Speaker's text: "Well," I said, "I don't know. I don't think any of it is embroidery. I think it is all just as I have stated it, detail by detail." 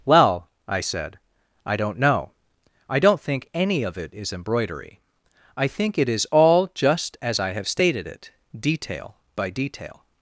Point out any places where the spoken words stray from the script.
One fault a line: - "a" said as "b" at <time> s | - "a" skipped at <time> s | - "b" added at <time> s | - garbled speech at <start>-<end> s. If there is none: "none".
none